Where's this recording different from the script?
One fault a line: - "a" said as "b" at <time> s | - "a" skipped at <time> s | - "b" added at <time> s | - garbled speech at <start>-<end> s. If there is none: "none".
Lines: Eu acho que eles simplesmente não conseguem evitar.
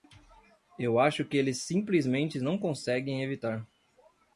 none